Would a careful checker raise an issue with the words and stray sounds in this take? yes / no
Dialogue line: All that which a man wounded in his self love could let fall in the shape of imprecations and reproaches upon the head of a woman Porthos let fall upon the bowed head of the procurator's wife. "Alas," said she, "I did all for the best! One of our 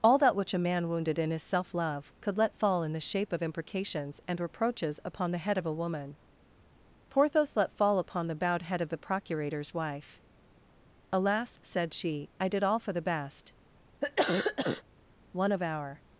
yes